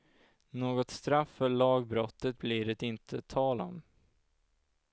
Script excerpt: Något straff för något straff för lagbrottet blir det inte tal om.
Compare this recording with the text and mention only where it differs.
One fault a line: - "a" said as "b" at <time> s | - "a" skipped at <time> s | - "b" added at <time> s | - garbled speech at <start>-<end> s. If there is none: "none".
- "något straff för" skipped at 1.5 s